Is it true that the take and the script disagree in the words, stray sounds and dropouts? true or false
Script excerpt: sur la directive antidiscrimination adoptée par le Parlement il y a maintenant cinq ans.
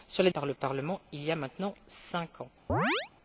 true